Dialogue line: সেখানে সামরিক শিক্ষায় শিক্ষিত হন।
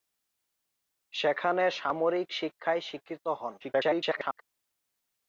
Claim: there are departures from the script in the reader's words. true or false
true